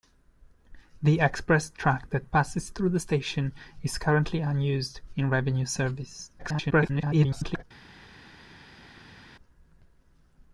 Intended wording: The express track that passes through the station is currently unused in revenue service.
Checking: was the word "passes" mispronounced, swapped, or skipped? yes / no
no